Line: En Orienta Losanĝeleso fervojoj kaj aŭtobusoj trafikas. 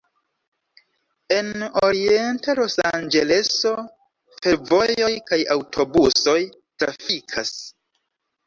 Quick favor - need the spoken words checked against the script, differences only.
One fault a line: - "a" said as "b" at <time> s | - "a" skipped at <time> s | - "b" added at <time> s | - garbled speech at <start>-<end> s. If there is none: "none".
none